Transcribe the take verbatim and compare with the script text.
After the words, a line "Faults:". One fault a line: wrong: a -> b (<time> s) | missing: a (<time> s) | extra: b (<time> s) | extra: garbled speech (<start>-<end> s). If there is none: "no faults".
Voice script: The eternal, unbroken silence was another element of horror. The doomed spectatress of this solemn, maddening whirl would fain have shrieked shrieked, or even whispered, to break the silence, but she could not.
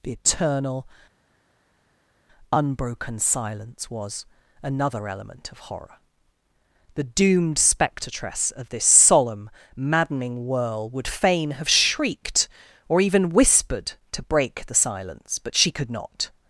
The eternal, unbroken silence was another element of horror. The doomed spectatress of this solemn, maddening whirl would fain have shrieked, or even whispered, to break the silence, but she could not.
Faults:
missing: shrieked (12.5 s)